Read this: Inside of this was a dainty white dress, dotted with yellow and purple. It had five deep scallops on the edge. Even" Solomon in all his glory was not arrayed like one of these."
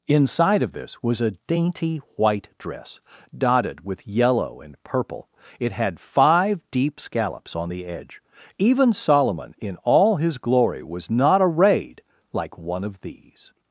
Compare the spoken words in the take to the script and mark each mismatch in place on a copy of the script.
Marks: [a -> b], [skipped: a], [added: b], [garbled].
Inside of this was a dainty white dress, dotted with yellow and purple. It had five deep scallops on the edge. Even" Solomon in all his glory was not arrayed like one of these."